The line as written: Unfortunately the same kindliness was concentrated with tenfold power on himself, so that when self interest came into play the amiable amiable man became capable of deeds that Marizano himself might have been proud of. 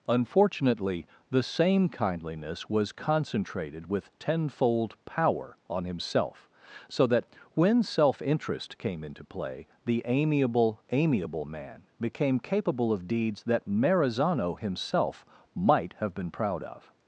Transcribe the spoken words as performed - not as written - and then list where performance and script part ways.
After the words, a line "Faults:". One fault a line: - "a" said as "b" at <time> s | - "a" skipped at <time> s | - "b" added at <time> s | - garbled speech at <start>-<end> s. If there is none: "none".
Unfortunately the same kindliness was concentrated with tenfold power on himself, so that when self interest came into play the amiable amiable man became capable of deeds that Marizano himself might have been proud of.
Faults:
none